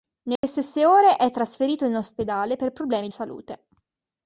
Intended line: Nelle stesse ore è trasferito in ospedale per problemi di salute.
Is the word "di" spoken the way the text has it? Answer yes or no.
no